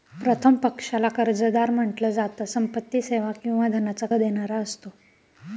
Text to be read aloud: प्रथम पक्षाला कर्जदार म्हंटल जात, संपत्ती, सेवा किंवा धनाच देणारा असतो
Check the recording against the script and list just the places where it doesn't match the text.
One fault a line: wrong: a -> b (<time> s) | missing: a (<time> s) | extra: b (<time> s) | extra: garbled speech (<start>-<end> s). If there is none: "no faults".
no faults